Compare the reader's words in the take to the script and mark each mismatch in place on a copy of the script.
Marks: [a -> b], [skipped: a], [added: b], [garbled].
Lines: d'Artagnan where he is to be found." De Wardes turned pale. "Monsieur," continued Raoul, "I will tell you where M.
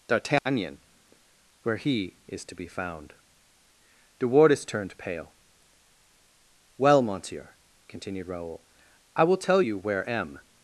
d'Artagnan where he is to be found." De Wardes turned pale. [added: Well] "Monsieur," continued Raoul, "I will tell you where M.